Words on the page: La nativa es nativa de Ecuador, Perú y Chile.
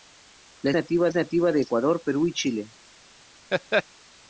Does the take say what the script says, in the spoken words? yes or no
yes